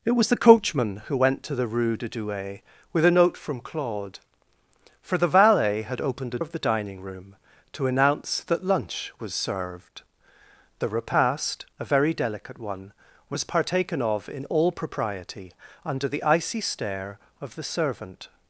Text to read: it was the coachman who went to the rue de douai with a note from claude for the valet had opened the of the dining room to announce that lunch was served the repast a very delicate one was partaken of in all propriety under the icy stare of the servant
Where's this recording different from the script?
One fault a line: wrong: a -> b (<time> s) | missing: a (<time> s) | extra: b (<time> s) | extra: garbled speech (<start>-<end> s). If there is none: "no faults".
no faults